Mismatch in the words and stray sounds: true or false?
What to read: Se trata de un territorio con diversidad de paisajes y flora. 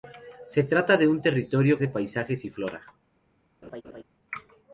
true